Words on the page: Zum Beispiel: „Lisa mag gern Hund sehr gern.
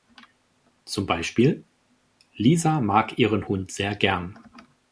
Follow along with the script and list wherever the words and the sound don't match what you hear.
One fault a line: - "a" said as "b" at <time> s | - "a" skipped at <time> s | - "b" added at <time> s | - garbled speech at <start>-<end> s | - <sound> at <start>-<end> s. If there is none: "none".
- "gern" said as "ihren" at 3.2 s